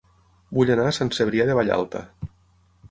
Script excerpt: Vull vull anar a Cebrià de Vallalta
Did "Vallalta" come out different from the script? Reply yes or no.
no